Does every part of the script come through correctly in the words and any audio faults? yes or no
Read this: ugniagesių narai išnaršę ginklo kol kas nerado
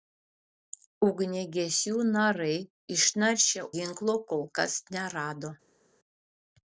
yes